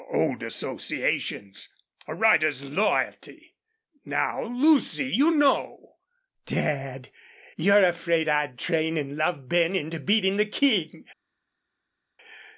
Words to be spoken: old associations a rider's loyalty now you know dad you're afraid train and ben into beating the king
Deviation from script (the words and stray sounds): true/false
true